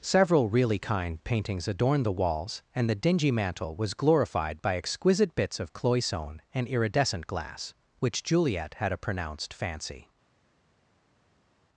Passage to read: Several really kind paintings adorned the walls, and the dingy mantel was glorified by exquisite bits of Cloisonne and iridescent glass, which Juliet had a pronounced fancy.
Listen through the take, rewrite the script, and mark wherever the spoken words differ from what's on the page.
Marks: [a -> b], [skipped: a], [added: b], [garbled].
Several really kind paintings adorned the walls, and the dingy mantel was glorified by exquisite bits of Cloisonne and iridescent glass, which Juliet had a pronounced fancy.